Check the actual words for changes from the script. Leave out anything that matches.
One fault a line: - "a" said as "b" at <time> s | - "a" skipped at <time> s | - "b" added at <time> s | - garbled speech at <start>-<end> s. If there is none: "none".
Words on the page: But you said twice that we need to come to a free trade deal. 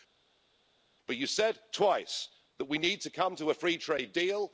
none